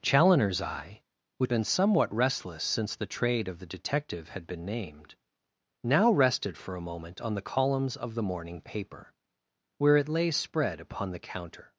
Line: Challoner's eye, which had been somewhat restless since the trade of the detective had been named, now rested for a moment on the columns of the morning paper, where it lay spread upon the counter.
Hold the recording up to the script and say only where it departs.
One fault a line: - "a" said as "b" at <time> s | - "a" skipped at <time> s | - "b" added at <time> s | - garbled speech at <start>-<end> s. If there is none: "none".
- "had" skipped at 1.5 s